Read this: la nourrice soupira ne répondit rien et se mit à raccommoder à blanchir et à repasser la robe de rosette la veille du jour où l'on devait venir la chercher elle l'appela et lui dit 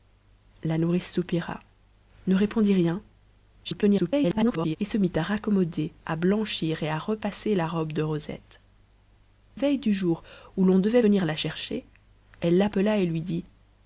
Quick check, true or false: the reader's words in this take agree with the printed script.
false